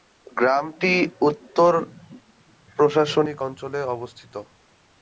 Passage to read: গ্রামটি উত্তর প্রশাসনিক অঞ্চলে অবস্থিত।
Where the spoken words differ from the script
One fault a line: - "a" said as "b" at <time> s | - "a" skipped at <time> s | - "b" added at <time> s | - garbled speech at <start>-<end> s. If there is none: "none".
none